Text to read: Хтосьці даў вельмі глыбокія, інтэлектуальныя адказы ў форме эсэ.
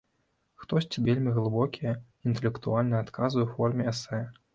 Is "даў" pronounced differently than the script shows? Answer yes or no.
yes